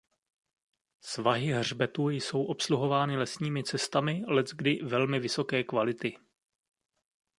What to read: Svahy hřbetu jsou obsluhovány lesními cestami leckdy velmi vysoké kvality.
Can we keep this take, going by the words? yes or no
yes